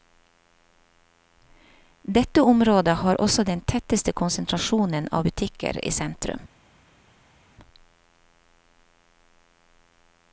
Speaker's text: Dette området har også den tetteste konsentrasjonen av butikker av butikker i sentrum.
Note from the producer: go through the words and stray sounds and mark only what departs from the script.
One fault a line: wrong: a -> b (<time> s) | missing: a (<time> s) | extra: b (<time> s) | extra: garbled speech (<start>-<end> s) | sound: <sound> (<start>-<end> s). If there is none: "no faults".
missing: av butikker (5.8 s)